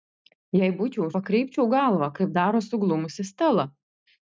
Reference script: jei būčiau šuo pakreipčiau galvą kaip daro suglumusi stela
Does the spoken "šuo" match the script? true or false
false